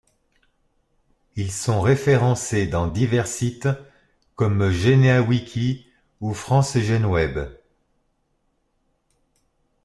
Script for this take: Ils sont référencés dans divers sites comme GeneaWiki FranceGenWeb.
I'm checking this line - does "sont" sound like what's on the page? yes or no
yes